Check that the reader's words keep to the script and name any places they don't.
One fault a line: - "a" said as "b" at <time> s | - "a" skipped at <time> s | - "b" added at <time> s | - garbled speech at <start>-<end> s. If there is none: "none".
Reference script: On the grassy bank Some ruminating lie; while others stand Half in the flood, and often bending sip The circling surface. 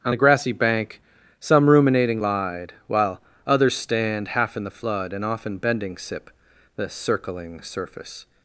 - "lie" said as "lied" at 2.2 s